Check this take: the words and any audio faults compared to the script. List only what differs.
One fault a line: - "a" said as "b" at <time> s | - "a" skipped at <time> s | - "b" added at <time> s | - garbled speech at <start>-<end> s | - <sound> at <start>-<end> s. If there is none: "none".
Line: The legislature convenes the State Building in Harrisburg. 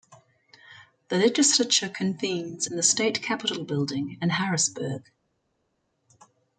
- "in" added at 2.6 s
- "Capitol" added at 3.2 s